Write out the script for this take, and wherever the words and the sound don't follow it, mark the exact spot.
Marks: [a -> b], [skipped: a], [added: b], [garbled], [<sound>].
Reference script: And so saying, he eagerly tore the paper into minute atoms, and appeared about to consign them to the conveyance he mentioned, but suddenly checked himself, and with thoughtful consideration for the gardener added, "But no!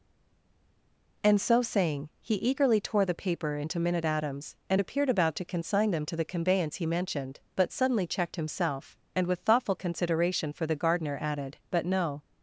And so saying, he eagerly tore the paper into minute atoms, and appeared about to consign them to the conveyance he mentioned, but suddenly checked himself, and with thoughtful consideration for the gardener added, "But no!